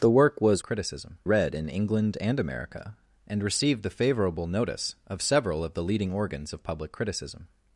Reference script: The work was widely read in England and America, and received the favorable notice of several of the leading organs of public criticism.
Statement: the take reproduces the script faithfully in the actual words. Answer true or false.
false